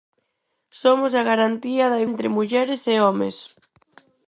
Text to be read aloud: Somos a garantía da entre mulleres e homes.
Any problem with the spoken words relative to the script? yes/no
no